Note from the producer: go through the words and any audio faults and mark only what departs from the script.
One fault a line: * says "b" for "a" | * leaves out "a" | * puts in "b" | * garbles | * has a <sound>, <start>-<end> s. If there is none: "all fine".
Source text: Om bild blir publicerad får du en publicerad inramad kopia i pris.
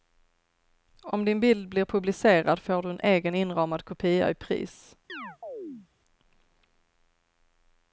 * puts in "din"
* says "egen" for "publicerad"
* has a chirp, 5.1-5.9 s